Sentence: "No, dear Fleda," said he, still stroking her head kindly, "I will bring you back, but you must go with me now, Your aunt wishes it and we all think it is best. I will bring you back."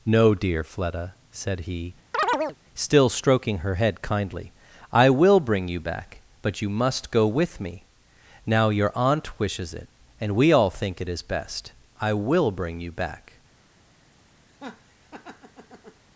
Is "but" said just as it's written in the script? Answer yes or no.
yes